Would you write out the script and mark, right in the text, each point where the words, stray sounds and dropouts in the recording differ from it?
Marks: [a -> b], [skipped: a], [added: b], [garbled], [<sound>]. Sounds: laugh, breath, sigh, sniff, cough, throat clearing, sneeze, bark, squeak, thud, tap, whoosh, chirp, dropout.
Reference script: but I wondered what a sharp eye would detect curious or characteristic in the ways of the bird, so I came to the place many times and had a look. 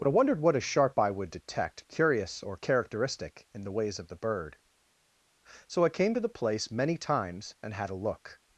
but I wondered what a sharp eye would detect curious or characteristic in the ways of the bird, so I came to the place many times and had a look.